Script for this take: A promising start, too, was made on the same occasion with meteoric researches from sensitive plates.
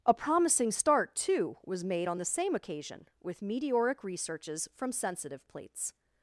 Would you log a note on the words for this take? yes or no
no